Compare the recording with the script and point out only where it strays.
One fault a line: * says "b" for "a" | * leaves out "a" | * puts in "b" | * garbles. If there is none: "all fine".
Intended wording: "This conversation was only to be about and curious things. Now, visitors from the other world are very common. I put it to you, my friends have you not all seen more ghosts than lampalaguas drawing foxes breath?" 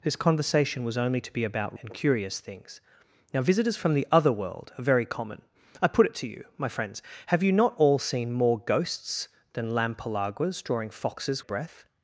all fine